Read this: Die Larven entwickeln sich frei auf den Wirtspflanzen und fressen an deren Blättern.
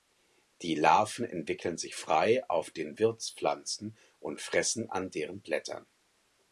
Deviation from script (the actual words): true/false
false